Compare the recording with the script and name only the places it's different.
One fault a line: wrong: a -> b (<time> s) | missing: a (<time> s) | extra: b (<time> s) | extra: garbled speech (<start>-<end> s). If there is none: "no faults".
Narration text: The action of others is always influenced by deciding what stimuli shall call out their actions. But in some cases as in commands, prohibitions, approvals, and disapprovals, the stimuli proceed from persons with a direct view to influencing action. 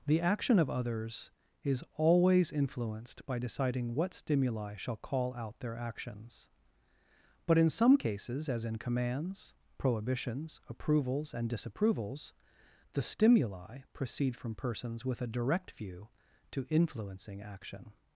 no faults